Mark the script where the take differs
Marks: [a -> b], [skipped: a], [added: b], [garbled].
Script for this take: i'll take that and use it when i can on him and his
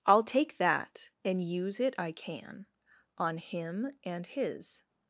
i'll take that and use it [skipped: when] i can on him and his